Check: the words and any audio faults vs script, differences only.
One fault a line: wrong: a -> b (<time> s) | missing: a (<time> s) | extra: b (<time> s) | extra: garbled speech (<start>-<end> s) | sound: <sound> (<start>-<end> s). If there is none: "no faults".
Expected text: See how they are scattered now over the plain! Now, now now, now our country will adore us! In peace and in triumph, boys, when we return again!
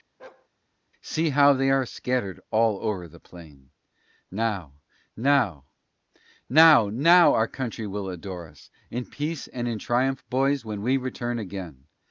sound: bark (0.2-0.5 s)
wrong: now -> all (2.5 s)